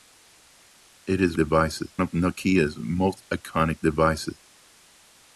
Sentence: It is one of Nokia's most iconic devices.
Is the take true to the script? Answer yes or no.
no